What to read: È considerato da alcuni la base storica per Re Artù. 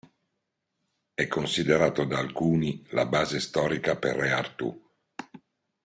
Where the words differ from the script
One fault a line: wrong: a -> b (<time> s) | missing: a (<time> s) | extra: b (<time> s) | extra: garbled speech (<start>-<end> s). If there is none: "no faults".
no faults